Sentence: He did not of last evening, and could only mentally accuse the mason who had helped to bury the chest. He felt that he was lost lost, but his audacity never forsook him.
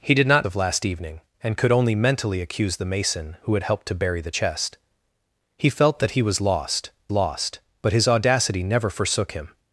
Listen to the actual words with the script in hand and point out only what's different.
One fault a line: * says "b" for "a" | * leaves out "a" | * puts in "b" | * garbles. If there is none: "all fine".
all fine